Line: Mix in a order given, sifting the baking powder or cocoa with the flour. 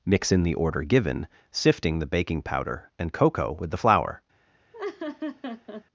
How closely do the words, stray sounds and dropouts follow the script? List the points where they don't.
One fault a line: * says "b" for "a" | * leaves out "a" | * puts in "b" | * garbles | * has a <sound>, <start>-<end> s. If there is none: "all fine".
* says "the" for "a"
* says "and" for "or"
* has a laugh, 4.7-5.8 s